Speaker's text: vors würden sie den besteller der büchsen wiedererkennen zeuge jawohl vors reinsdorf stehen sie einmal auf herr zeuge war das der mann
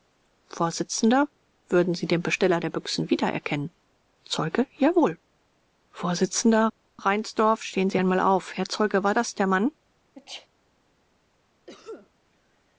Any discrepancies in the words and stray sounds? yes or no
yes